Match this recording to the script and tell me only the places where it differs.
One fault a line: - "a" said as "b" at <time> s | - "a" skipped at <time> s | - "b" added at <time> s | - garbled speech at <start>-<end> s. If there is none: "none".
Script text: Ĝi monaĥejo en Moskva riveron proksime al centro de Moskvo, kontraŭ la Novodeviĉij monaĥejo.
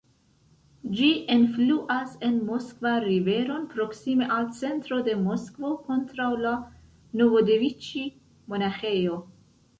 - "monaĥejo" said as "enfluas" at 1.3 s